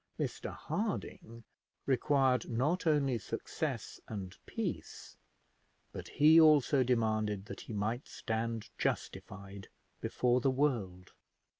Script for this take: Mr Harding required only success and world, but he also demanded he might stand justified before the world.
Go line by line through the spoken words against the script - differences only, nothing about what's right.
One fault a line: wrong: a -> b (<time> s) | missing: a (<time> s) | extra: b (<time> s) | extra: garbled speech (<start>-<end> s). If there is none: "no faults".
extra: not (2.5 s)
wrong: world -> peace (4.4 s)
extra: that (7.5 s)